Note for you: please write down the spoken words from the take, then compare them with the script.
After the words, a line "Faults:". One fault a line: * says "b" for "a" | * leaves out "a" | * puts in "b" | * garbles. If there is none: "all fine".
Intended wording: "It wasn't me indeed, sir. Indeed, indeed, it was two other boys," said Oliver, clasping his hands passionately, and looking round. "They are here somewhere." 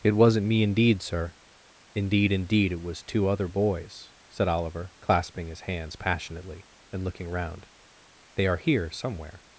"It wasn't me indeed, sir. Indeed, indeed, it was two other boys," said Oliver, clasping his hands passionately, and looking round. "They are here somewhere."
Faults:
all fine